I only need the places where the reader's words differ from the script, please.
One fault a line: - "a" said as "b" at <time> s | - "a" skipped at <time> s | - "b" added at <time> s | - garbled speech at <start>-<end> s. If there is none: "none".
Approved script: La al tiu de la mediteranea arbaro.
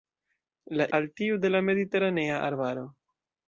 none